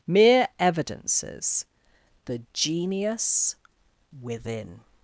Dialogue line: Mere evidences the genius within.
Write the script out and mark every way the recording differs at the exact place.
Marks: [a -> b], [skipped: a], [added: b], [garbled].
Mere evidences the genius within.